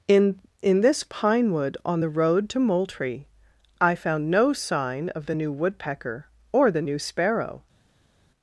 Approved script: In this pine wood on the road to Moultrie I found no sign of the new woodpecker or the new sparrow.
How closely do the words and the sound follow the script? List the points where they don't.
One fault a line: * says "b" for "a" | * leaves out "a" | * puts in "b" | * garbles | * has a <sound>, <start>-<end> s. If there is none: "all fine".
* puts in "in"